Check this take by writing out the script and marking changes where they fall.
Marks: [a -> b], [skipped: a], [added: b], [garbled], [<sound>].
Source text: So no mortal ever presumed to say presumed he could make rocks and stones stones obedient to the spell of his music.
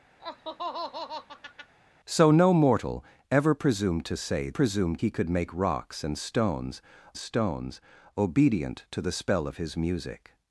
[laugh] So no mortal ever presumed to say presumed he could make rocks and stones stones obedient to the spell of his music.